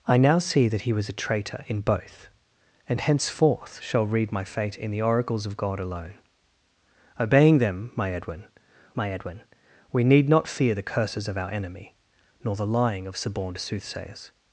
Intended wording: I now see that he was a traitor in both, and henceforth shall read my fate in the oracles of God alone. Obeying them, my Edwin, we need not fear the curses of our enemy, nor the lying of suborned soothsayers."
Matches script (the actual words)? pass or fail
fail